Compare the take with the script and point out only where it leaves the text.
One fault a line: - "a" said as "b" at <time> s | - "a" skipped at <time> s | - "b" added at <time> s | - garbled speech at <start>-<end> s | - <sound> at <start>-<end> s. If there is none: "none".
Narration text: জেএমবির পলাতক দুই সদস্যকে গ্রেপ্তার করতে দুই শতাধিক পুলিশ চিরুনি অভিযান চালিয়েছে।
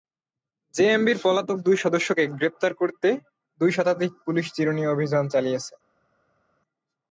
none